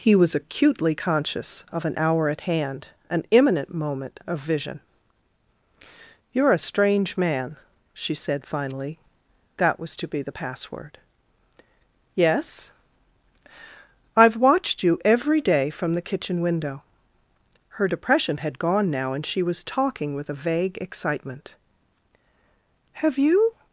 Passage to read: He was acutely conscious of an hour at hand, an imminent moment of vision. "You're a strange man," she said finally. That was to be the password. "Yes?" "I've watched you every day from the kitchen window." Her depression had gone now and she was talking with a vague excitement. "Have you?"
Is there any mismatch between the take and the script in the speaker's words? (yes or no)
no